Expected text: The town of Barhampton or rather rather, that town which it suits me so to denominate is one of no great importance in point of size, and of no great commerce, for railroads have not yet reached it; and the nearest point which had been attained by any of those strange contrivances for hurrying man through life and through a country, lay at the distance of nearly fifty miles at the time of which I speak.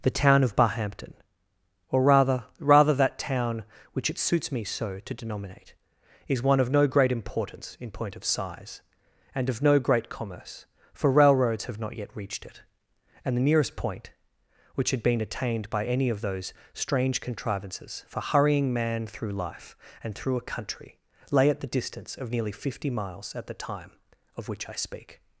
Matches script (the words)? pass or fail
pass